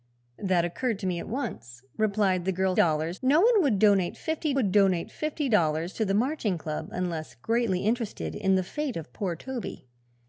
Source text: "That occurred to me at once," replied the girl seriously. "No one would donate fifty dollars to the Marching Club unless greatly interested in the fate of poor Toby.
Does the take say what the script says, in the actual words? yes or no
no